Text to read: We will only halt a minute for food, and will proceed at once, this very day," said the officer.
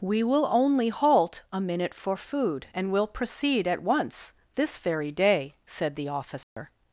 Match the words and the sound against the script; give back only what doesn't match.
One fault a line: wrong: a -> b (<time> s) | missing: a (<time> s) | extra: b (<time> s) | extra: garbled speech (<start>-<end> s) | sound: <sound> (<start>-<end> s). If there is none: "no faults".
sound: dropout (6.4-6.6 s)